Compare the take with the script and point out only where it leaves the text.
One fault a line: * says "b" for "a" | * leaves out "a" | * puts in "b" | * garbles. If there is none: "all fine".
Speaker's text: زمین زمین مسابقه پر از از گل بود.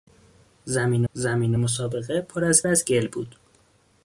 all fine